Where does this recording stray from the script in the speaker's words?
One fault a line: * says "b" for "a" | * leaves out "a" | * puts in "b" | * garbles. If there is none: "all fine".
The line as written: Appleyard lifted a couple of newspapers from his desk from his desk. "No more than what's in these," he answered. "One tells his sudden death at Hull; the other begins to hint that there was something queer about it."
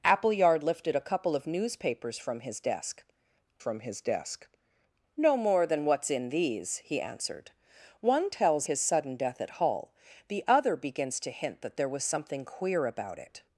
all fine